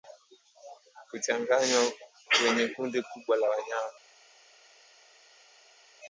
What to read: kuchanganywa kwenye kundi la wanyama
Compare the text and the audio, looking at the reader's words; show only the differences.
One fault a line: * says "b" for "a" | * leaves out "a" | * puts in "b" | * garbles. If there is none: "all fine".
* puts in "kubwa"